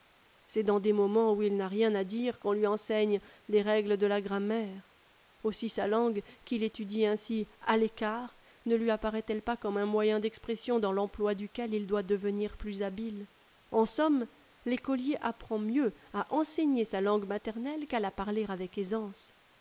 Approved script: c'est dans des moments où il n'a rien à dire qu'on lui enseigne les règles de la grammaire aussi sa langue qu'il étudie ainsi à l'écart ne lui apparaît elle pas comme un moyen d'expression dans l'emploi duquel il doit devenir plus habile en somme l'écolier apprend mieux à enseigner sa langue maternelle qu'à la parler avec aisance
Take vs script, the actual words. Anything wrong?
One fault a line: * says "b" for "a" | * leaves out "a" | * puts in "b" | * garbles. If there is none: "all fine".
all fine